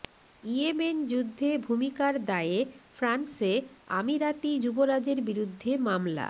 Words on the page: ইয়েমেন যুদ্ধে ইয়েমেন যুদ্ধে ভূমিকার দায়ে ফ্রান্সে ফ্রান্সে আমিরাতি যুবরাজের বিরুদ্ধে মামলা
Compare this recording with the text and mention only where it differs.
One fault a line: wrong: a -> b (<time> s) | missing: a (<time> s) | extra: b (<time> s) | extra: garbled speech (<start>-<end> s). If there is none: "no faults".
missing: ইয়েমেন যুদ্ধে (1.5 s)
missing: ফ্রান্সে (3.5 s)